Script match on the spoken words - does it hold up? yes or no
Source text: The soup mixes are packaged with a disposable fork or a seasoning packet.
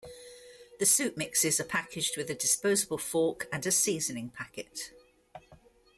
no